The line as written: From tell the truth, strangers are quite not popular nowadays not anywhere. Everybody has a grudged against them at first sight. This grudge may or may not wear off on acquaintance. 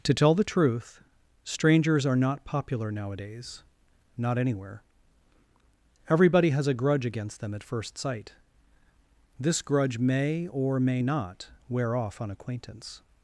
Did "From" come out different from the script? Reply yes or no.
yes